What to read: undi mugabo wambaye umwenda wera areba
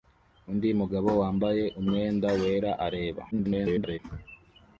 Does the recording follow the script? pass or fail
fail